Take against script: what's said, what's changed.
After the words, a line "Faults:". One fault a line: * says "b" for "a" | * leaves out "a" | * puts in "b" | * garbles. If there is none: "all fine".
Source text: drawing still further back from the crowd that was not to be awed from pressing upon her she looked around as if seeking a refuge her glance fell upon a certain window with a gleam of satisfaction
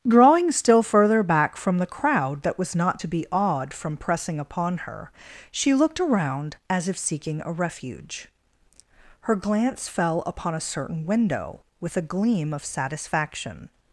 drawing still further back from the crowd that was not to be awed from pressing upon her she looked around as if seeking a refuge her glance fell upon a certain window with a gleam of satisfaction
Faults:
all fine